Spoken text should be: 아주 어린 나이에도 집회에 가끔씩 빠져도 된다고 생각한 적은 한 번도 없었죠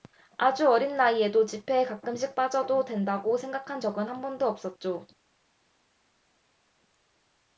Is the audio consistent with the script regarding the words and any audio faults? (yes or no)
yes